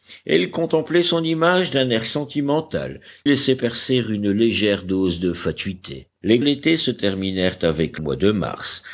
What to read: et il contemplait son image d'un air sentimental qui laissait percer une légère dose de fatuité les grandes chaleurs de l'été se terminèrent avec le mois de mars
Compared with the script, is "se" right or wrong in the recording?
right